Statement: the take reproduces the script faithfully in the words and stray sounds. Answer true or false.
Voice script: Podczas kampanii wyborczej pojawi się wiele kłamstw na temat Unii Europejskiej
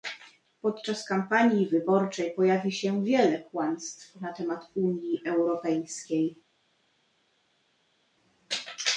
true